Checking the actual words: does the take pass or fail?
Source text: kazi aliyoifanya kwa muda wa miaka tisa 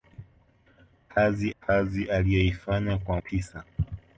fail